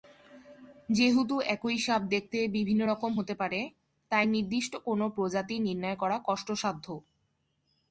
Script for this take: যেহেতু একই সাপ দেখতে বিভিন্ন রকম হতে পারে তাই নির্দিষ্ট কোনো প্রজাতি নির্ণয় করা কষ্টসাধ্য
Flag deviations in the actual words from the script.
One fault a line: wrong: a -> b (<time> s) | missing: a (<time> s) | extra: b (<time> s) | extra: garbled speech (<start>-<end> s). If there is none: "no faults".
no faults